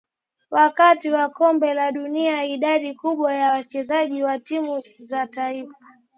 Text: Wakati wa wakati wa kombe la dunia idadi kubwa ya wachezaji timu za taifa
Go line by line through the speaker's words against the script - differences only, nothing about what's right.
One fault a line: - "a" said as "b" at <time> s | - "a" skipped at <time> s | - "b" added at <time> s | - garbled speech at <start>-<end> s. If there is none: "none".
- "wakati wa" skipped at 1.3 s
- "wa" added at 4.2 s